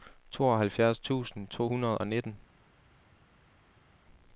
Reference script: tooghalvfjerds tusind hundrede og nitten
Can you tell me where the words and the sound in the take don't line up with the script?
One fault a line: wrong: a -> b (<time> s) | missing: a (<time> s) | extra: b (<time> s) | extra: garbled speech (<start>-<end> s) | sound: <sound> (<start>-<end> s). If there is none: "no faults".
extra: to (1.5 s)